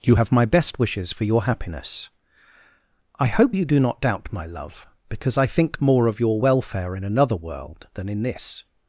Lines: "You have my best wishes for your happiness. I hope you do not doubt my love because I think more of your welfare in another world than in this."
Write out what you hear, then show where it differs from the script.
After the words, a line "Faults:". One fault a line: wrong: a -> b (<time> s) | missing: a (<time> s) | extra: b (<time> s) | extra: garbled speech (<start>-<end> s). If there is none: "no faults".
"You have my best wishes for your happiness. I hope you do not doubt my love because I think more of your welfare in another world than in this."
Faults:
no faults